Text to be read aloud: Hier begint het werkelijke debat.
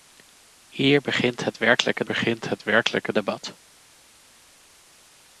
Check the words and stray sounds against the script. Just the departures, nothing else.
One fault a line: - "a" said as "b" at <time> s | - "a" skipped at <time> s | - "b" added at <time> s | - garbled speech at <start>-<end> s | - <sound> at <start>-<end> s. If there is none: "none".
- "begint het werkelijke" added at 2.0 s